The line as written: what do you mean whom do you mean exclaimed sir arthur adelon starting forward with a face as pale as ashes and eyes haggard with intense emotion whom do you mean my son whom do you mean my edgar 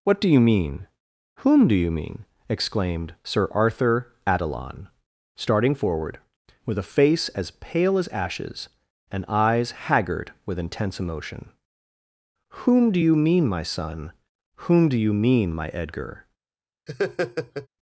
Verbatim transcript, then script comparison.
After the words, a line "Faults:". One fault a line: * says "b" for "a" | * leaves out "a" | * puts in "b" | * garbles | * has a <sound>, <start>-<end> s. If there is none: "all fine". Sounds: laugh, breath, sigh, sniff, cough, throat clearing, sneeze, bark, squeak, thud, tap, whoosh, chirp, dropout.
what do you mean whom do you mean exclaimed sir arthur adelon starting forward with a face as pale as ashes and eyes haggard with intense emotion whom do you mean my son whom do you mean my edgar
Faults:
* has a laugh, 16.9-17.7 s